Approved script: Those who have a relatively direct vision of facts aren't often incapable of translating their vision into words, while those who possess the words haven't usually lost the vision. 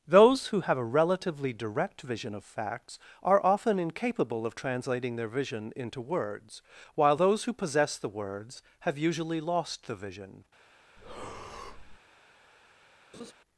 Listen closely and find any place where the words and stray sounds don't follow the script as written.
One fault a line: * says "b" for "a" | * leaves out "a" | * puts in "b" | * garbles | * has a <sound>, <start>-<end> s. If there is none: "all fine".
* says "are" for "aren't"
* says "have" for "haven't"
* has a breath, 11.0-12.0 s
* has a laugh, 13.1-13.3 s